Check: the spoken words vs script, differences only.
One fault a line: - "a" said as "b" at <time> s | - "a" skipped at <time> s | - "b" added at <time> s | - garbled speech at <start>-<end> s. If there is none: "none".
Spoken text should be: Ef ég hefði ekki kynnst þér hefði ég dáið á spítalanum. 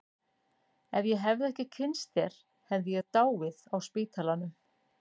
none